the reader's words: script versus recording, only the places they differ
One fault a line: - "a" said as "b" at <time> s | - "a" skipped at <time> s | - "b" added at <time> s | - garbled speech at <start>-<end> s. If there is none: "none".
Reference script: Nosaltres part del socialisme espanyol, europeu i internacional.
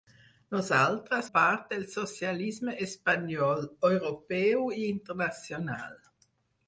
none